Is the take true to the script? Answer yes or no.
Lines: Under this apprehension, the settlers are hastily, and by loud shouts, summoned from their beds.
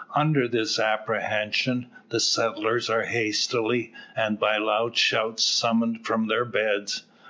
yes